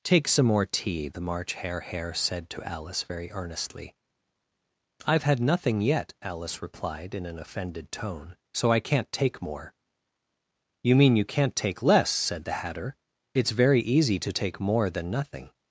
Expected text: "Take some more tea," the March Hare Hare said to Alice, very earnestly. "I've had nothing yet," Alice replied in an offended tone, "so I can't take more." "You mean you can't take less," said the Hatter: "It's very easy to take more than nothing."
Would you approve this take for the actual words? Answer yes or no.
yes